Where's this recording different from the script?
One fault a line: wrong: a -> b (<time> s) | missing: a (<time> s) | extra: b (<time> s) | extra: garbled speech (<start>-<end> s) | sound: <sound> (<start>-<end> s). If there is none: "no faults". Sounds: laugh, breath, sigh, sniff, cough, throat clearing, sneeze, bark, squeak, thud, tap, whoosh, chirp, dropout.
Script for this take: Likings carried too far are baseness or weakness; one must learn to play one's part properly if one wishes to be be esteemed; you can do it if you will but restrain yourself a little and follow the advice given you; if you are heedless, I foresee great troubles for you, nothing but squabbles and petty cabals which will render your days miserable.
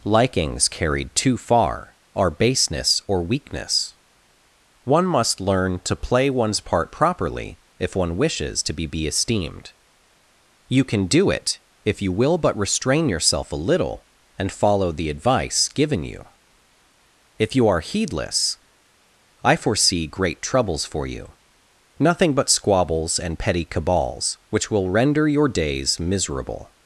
no faults